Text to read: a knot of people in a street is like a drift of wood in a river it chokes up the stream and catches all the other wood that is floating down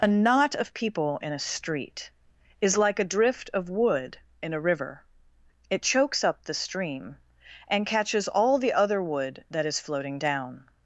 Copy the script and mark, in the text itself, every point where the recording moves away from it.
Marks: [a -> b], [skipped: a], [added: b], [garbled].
a knot of people in a street is like a drift of wood in a river it chokes up the stream and catches all the other wood that is floating down